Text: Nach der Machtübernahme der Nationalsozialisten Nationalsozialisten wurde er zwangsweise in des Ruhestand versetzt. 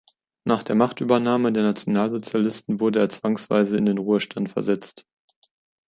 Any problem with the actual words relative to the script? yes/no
yes